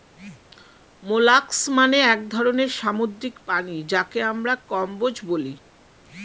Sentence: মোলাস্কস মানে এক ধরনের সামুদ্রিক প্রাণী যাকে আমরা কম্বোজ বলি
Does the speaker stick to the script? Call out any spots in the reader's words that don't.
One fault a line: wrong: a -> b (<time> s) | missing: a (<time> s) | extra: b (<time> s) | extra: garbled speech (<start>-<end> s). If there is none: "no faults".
no faults